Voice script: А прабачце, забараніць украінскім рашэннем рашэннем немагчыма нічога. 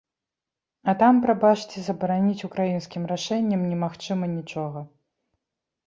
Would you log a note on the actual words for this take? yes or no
yes